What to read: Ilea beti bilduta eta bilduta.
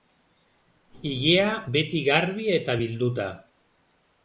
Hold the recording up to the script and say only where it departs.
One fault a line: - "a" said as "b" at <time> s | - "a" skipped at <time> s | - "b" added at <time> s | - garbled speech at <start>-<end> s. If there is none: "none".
- "bilduta" said as "garbi" at 2.1 s